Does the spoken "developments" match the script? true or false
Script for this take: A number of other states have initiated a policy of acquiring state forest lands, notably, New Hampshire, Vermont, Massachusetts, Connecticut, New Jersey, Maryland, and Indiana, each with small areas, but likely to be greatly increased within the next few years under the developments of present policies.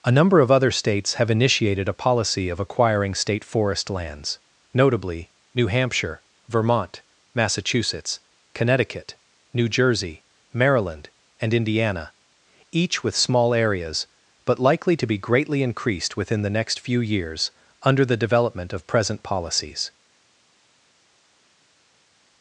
false